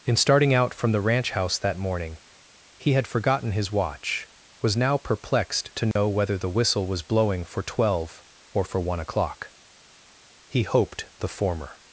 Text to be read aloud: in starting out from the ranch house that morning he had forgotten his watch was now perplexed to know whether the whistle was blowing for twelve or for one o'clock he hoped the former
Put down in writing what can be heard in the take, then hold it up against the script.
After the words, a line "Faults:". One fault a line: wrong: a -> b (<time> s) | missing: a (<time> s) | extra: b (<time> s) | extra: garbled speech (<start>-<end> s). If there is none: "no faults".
in starting out from the ranch house that morning he had forgotten his watch was now perplexed to know whether the whistle was blowing for twelve or for one o'clock he hoped the former
Faults:
no faults